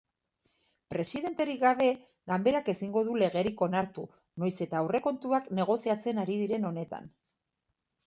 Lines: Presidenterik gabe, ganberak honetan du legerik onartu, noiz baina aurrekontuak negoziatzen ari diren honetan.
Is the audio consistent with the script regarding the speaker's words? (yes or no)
no